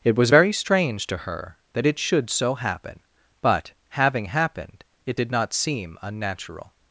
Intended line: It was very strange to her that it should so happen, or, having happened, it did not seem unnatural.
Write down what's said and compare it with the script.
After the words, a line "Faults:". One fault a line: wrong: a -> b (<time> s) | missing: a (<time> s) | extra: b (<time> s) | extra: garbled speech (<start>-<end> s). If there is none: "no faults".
It was very strange to her that it should so happen, but, having happened, it did not seem unnatural.
Faults:
wrong: or -> but (3.4 s)